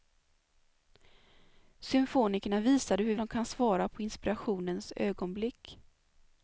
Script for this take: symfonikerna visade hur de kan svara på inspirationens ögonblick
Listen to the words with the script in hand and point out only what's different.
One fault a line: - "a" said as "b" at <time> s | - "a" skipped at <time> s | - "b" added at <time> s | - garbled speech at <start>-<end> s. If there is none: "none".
none